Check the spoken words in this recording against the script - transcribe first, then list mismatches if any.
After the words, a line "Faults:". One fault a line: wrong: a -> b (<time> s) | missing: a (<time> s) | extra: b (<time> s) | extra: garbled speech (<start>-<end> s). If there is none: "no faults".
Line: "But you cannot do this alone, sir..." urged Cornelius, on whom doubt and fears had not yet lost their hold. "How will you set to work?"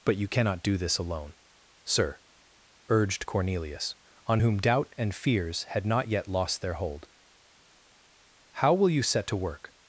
"But you cannot do this alone, sir..." urged Cornelius, on whom doubt and fears had not yet lost their hold. "How will you set to work?"
Faults:
no faults